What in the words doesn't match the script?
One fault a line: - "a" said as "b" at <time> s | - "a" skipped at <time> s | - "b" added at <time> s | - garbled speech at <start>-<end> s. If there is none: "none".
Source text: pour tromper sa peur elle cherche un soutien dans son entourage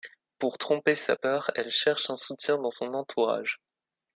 none